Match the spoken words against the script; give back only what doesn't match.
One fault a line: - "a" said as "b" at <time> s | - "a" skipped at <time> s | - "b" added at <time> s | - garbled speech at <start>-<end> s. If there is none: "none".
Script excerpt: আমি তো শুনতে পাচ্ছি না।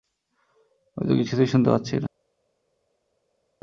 - "কিছুই" added at 1.2 s